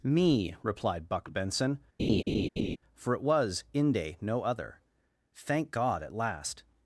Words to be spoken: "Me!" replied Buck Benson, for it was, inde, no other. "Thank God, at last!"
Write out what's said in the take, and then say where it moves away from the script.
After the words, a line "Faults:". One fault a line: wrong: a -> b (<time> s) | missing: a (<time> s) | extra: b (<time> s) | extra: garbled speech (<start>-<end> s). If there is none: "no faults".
"Me!" replied Buck Benson, for it was, inde, no other. "Thank God, at last!"
Faults:
no faults